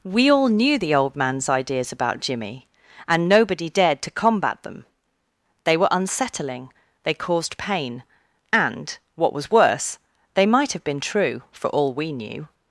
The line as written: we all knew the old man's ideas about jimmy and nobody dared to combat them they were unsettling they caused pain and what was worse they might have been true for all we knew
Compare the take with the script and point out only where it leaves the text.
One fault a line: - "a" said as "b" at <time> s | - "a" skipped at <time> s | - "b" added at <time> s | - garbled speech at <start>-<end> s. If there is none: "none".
none